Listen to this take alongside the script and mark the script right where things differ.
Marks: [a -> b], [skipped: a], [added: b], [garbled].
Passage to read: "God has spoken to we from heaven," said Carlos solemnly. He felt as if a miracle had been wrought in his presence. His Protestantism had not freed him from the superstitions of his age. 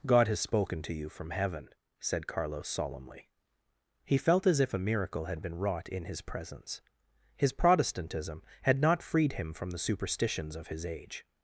"God has spoken to [we -> you] from heaven," said Carlos solemnly. He felt as if a miracle had been wrought in his presence. His Protestantism had not freed him from the superstitions of his age.